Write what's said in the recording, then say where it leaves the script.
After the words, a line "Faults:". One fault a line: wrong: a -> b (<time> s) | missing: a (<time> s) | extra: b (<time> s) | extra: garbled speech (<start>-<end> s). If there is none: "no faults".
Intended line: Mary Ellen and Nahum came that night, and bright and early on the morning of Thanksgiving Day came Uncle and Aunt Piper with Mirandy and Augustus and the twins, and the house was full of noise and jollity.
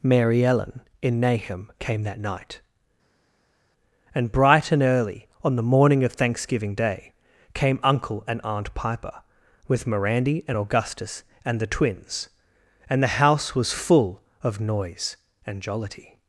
Mary Ellen in Nahum came that night, and bright and early on the morning of Thanksgiving Day came Uncle and Aunt Piper with Mirandy and Augustus and the twins, and the house was full of noise and jollity.
Faults:
wrong: and -> in (1.0 s)